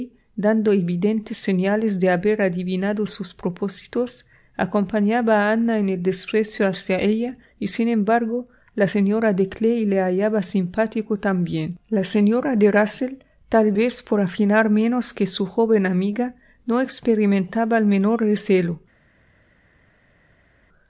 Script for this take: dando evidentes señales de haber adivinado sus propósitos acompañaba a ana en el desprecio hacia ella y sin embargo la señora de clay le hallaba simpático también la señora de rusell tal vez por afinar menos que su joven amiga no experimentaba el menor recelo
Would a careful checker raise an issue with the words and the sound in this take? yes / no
no